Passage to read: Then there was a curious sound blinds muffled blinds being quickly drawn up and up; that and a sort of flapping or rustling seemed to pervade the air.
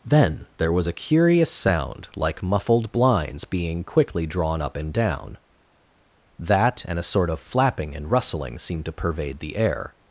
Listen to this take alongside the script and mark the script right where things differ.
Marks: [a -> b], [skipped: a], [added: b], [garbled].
Then there was a curious sound [blinds -> like] muffled blinds being quickly drawn up and [up; -> down] that and a sort of flapping [or -> and] rustling seemed to pervade the air.